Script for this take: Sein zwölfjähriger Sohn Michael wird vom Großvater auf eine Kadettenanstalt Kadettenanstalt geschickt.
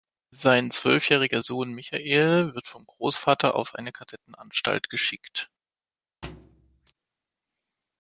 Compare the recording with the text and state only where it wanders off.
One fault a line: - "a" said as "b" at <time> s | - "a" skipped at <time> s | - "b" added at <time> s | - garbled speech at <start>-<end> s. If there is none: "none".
- "Kadettenanstalt" skipped at 4.9 s